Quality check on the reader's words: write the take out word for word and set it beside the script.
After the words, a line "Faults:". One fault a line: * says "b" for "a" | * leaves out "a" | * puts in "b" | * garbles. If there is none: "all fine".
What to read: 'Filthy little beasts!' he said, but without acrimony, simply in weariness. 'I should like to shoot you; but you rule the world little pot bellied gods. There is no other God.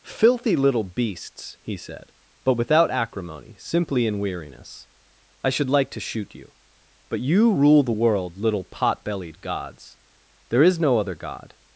'Filthy little beasts!' he said, but without acrimony, simply in weariness. 'I should like to shoot you; but you rule the world little pot bellied gods. There is no other God.
Faults:
all fine